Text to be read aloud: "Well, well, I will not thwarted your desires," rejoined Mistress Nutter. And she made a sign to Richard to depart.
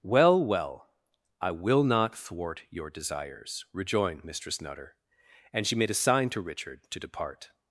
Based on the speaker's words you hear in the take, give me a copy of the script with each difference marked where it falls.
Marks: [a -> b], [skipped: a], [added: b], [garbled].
"Well, well, I will not [thwarted -> thwart] your desires," rejoined Mistress Nutter. And she made a sign to Richard to depart.